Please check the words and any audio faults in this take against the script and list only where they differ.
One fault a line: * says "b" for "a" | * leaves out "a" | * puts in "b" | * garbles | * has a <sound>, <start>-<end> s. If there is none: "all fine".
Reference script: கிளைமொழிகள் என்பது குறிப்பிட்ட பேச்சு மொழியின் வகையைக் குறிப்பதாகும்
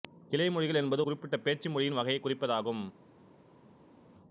all fine